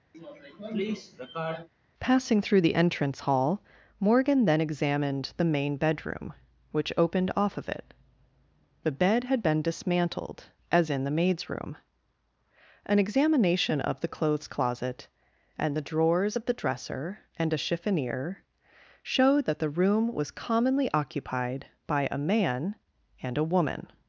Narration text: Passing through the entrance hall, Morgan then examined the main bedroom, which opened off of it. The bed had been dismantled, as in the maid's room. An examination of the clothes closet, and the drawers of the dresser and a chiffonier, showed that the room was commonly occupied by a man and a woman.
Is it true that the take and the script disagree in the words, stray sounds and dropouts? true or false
true